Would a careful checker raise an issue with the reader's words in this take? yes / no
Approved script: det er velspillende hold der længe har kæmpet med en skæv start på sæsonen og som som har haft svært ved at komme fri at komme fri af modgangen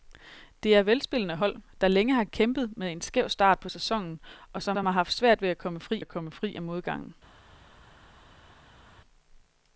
no